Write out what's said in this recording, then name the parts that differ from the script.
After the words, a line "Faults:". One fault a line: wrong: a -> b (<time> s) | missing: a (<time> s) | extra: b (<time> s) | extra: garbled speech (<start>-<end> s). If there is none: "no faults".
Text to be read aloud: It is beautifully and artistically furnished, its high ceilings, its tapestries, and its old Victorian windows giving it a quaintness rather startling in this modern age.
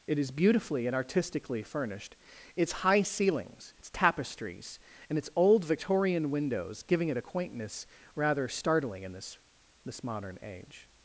It is beautifully and artistically furnished, its high ceilings, its tapestries, and its old Victorian windows giving it a quaintness rather startling in this this modern age.
Faults:
extra: this (9.8 s)